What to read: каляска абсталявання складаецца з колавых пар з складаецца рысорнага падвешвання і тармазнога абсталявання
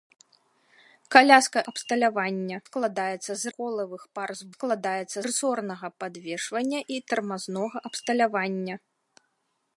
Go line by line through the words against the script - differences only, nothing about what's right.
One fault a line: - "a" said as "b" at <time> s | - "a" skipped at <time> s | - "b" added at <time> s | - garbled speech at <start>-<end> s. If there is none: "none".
none